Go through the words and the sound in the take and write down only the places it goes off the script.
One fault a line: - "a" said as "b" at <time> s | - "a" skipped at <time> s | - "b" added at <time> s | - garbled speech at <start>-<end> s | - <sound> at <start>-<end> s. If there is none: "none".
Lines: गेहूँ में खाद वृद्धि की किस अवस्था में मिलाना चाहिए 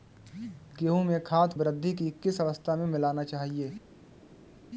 none